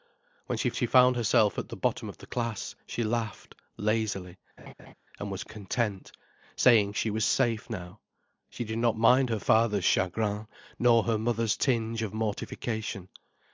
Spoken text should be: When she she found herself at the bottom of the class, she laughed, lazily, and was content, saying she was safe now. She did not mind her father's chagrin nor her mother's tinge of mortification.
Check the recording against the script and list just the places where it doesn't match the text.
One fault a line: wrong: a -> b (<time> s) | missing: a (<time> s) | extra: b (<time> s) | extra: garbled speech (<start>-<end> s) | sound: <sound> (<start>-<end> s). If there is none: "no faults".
sound: laugh (4.6-4.9 s)